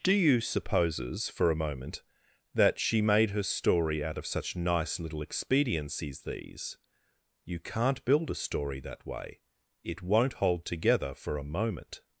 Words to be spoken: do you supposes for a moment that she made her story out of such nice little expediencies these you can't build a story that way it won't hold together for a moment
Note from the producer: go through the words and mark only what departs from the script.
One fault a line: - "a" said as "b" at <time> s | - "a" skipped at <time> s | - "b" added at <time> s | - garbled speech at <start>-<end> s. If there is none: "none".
none